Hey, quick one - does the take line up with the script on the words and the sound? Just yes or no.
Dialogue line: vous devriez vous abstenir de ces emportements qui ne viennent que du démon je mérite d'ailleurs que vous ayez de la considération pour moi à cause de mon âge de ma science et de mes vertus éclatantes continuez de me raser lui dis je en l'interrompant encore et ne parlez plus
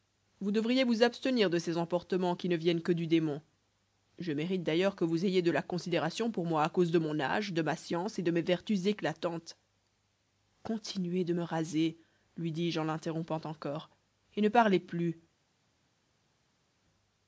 yes